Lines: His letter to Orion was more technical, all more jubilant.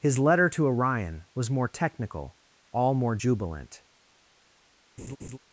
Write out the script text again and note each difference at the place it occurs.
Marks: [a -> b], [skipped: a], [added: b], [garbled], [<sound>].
His letter to Orion was more technical, all more jubilant. [laugh]